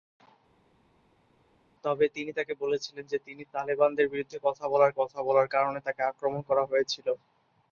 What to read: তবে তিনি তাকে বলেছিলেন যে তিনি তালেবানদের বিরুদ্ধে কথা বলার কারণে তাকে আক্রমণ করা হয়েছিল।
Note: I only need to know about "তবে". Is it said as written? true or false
true